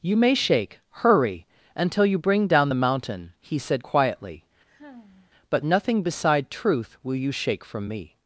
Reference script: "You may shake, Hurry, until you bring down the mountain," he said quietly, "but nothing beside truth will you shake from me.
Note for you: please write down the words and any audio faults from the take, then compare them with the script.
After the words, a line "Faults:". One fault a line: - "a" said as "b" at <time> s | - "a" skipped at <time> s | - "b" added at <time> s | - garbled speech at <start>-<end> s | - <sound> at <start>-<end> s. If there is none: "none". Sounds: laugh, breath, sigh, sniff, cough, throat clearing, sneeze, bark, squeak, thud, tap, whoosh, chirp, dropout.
"You may shake, Hurry, until you bring down the mountain," he said quietly, "but nothing beside truth will you shake from me.
Faults:
- sigh at 4.7-5.3 s